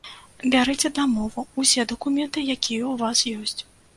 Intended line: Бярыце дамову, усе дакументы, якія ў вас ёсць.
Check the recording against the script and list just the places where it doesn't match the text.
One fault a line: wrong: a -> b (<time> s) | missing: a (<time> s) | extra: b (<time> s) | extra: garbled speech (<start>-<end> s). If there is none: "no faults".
no faults